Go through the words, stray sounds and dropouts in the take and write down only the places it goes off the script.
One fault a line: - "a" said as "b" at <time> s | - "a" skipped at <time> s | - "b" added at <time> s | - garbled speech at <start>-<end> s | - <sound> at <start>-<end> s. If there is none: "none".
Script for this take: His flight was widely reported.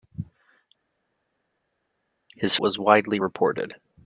- "flight" skipped at 2.6 s